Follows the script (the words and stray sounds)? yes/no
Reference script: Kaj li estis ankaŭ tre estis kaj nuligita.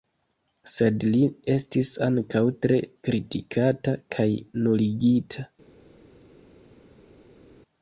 no